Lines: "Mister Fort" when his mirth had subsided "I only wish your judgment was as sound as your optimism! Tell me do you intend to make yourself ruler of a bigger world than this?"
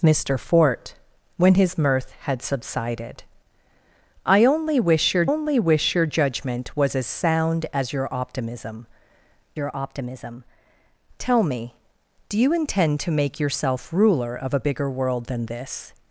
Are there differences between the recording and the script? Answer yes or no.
yes